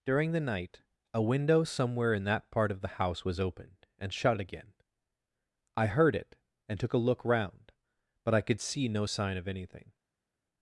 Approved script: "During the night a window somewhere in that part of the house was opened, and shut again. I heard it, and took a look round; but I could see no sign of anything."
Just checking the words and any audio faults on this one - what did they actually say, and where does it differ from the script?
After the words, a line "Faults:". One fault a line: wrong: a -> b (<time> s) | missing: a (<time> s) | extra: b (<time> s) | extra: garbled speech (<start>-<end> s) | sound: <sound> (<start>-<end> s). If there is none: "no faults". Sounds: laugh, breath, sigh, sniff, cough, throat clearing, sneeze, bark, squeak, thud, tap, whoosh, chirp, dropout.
"During the night a window somewhere in that part of the house was opened, and shut again. I heard it, and took a look round; but I could see no sign of anything."
Faults:
no faults